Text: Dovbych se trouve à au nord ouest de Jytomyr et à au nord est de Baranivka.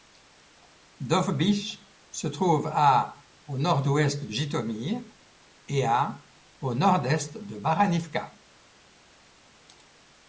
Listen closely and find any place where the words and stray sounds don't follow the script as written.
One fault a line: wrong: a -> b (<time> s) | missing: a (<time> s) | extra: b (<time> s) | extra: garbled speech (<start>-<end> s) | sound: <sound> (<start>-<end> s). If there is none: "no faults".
no faults